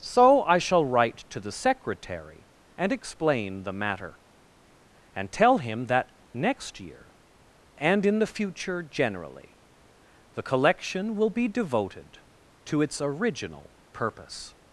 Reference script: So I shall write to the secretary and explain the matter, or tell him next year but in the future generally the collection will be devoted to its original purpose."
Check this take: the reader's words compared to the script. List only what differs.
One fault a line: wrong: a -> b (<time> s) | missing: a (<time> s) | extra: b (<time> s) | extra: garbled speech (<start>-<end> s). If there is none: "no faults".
wrong: or -> and (5.1 s)
extra: that (5.8 s)
wrong: but -> and (7.8 s)